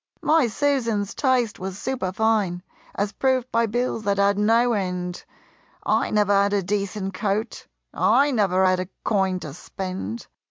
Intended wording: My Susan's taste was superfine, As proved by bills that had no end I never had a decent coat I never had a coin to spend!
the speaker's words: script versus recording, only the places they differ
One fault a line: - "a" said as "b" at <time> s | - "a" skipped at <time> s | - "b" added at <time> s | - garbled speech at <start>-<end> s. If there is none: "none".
none